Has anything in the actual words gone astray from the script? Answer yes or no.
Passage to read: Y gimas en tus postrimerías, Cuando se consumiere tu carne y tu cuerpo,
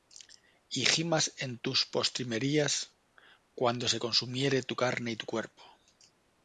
no